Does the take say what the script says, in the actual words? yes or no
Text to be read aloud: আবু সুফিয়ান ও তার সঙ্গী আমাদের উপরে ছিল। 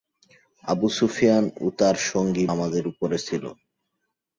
yes